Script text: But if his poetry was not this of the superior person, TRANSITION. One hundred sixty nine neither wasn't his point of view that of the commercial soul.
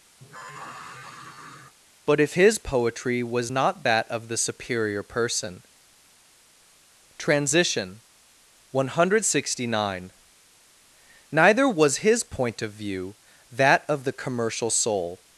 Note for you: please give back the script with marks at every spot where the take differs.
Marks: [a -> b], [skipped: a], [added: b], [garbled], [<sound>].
[sigh] But if his poetry was not [this -> that] of the superior person, TRANSITION. One hundred sixty nine neither [wasn't -> was] his point of view that of the commercial soul.